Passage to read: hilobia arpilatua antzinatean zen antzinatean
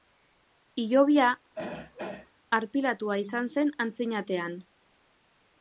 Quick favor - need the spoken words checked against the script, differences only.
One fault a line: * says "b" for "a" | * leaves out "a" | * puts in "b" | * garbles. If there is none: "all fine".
* says "izan" for "antzinatean"